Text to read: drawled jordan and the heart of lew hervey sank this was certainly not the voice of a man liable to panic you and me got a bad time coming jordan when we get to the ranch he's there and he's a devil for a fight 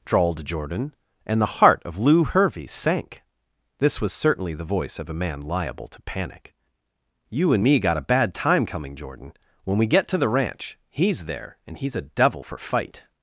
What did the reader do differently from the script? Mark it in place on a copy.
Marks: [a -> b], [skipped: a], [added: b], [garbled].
drawled jordan and the heart of lew hervey sank this was certainly [skipped: not] the voice of a man liable to panic you and me got a bad time coming jordan when we get to the ranch he's there and he's a devil for [skipped: a] fight